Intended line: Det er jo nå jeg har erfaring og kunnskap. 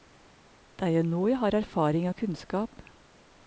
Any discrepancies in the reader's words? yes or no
no